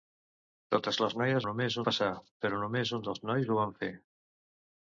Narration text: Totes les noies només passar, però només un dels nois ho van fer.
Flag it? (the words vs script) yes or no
no